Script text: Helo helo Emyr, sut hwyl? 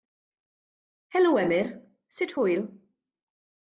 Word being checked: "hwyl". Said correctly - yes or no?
yes